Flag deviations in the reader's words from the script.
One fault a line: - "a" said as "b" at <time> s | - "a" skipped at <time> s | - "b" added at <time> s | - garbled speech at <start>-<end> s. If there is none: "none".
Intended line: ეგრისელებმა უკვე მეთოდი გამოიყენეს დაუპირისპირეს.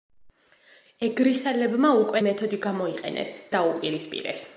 none